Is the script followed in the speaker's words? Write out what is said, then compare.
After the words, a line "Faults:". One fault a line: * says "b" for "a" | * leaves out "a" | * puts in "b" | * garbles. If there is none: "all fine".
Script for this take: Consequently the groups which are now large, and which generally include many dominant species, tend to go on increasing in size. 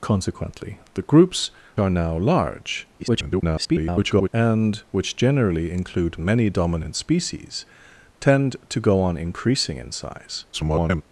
Consequently the groups are now large, [garbled] and which generally include many dominant species, tend to go on increasing in size. [garbled]
Faults:
* leaves out "which"
* garbles
* garbles